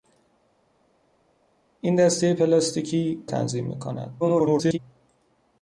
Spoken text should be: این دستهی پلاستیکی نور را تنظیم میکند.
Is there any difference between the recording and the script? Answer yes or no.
yes